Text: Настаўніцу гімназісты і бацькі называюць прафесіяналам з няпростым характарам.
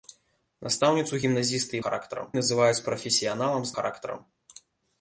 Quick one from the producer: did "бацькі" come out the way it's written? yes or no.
no